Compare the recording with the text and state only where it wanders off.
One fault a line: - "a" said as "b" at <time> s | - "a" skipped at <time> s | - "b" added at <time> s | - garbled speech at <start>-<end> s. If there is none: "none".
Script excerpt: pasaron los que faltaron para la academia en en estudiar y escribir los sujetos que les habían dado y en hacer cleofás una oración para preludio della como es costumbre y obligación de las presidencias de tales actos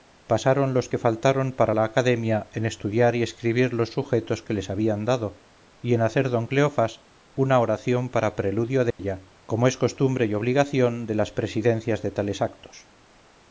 - "en" skipped at 2.7 s
- "don" added at 6.3 s